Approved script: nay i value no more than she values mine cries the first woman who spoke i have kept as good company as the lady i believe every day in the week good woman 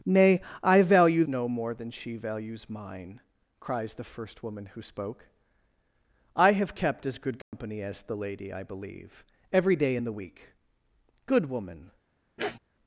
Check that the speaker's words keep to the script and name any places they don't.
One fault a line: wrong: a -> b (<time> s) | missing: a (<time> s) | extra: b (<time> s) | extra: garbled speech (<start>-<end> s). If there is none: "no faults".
no faults